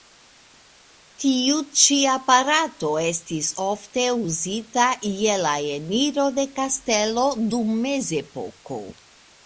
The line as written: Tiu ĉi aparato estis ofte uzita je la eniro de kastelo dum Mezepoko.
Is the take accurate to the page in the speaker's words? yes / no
yes